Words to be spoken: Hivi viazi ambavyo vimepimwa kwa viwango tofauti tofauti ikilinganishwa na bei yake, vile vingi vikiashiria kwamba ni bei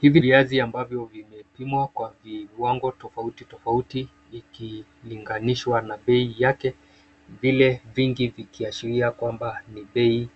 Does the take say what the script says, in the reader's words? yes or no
yes